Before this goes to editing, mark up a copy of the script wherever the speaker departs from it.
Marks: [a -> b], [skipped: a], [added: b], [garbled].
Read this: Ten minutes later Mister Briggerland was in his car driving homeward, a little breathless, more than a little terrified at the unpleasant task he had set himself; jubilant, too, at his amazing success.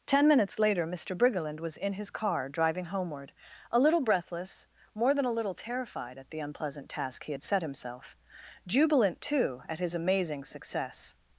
Ten minutes later Mister Briggerland was in his car driving homeward, a little breathless, more than a little terrified at the unpleasant task he had set himself; jubilant, too, at his amazing success.